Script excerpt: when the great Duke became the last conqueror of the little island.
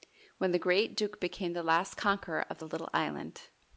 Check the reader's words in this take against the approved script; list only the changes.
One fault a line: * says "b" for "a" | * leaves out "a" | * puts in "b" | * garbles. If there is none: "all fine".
all fine